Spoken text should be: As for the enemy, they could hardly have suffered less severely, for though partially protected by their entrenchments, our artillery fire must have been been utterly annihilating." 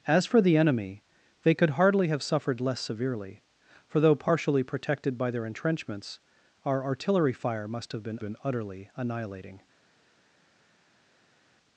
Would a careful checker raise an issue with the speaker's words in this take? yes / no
no